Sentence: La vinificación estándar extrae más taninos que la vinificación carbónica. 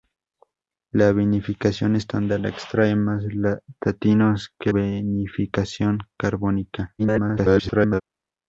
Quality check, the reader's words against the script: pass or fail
fail